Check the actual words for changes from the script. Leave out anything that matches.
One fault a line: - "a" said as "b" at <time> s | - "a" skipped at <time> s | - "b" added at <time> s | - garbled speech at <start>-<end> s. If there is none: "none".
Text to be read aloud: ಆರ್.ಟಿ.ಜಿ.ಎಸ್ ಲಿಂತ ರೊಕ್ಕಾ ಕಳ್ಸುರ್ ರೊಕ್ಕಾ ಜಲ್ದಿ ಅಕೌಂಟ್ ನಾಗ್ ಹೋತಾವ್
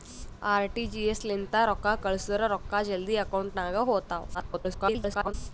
- garbled speech at 4.3-5.3 s